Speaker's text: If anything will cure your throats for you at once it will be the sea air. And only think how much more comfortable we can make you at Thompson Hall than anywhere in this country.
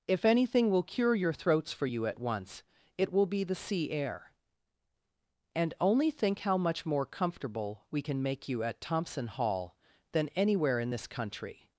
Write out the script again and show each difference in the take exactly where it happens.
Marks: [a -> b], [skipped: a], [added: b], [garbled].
If anything will cure your throats for you at once it will be the sea air. And only think how much more comfortable we can make you at Thompson Hall than anywhere in this country.